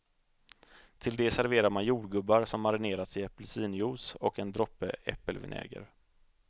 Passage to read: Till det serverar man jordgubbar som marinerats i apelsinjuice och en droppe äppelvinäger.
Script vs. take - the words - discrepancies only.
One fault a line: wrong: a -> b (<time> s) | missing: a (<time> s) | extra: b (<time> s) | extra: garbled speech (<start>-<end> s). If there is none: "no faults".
no faults